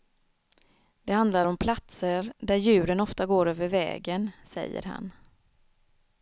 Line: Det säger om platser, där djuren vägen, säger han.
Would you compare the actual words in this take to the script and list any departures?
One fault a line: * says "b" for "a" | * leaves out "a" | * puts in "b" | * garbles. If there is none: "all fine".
* says "handlar" for "säger"
* puts in "ofta går över"